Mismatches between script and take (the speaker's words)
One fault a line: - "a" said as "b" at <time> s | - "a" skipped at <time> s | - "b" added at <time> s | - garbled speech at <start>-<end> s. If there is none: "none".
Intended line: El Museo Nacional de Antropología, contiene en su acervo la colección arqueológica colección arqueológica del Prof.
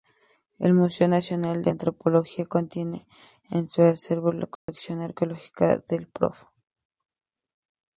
- "colección arqueológica" skipped at 5.8 s